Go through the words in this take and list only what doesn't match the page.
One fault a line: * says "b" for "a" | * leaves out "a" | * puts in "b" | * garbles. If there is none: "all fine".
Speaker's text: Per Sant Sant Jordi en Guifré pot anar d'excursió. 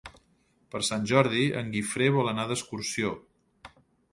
* leaves out "Sant"
* says "vol" for "pot"